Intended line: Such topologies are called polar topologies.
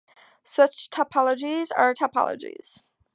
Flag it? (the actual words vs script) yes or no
yes